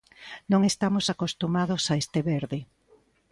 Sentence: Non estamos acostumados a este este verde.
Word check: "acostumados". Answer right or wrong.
right